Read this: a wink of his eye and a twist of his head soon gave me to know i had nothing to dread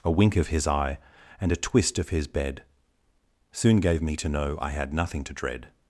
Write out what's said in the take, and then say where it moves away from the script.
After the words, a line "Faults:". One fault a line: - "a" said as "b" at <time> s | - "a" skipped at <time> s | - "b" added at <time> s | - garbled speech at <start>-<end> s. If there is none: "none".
a wink of his eye and a twist of his bed soon gave me to know i had nothing to dread
Faults:
- "head" said as "bed" at 2.3 s